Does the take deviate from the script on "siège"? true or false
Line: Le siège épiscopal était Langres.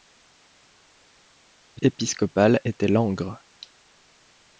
true